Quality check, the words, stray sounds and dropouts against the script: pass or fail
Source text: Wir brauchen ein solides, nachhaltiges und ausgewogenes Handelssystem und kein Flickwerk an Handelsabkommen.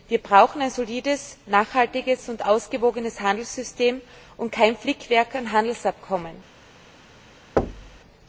fail